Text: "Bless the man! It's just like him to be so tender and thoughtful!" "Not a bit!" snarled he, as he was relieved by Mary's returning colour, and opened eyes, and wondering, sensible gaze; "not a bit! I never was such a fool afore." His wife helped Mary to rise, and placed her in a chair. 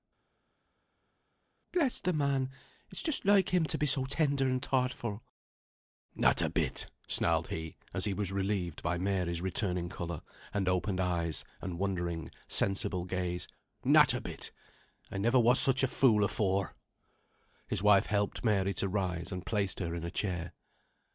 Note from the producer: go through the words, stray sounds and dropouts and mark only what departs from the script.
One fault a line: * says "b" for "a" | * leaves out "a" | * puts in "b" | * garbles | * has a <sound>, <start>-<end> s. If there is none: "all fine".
all fine